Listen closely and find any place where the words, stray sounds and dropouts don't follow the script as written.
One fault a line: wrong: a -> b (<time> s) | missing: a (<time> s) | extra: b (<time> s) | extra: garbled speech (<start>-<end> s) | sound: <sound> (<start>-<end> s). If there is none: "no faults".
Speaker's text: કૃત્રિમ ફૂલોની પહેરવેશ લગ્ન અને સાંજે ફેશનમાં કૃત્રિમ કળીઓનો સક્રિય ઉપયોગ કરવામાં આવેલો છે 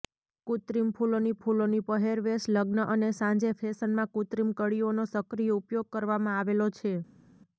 extra: ફૂલોની (1.4 s)